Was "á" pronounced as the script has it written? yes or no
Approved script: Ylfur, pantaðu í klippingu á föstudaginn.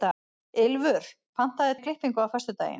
yes